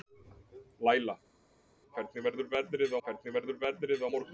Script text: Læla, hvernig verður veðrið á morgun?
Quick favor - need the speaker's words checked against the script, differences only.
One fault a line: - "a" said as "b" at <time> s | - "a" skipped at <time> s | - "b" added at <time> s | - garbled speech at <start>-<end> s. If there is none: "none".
- "hvernig verður veðrið" added at 3.0 s